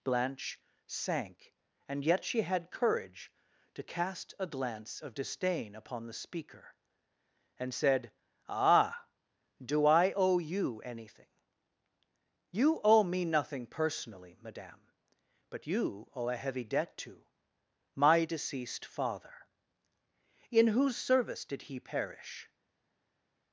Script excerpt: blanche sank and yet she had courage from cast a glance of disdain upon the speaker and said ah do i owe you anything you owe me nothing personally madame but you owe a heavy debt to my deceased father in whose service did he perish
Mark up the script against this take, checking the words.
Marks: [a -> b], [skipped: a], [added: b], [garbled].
blanche sank and yet she had courage [from -> to] cast a glance of disdain upon the speaker and said ah do i owe you anything you owe me nothing personally madame but you owe a heavy debt to my deceased father in whose service did he perish